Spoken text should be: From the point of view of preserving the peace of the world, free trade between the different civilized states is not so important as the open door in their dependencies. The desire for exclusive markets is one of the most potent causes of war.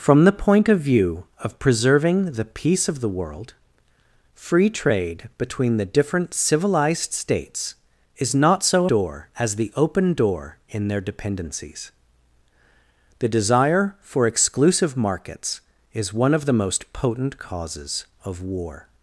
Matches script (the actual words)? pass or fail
fail